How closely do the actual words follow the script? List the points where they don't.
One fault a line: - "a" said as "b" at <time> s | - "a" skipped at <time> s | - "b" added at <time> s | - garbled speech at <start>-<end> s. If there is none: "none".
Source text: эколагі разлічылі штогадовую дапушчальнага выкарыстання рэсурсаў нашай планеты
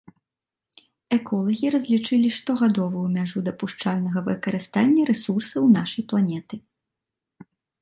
- "мяжу" added at 3.2 s